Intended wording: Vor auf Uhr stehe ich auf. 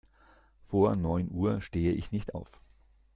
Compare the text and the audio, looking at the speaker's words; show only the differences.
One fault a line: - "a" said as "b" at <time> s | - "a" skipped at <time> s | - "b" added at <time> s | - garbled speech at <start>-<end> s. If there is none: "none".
- "auf" said as "neun" at 0.9 s
- "nicht" added at 2.1 s